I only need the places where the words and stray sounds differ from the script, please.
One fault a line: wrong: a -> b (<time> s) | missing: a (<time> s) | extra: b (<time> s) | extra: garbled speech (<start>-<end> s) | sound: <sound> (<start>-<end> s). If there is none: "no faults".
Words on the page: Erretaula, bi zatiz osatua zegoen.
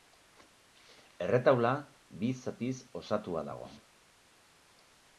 wrong: zegoen -> dago (3.5 s)